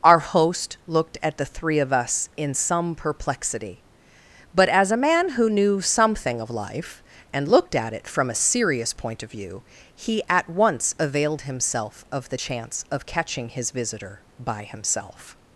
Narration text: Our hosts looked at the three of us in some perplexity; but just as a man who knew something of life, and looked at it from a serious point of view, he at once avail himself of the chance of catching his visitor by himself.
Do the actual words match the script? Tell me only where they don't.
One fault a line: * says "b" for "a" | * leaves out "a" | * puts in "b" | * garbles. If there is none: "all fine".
* says "host" for "hosts"
* leaves out "just"
* says "availed" for "avail"